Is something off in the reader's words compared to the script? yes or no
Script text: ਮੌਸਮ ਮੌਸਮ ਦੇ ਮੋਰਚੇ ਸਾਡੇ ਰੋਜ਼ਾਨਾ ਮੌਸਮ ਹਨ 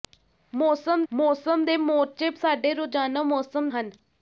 no